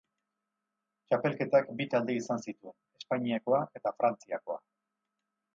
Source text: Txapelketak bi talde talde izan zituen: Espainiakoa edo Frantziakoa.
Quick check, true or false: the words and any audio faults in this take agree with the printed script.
false